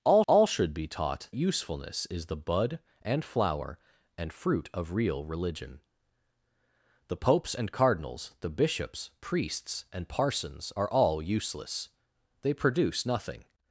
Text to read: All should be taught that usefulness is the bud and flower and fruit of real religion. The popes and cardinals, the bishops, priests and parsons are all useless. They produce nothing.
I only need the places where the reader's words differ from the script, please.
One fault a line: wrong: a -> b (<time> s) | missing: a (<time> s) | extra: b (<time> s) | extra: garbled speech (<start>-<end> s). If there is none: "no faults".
extra: all (0.3 s)
missing: that (1.3 s)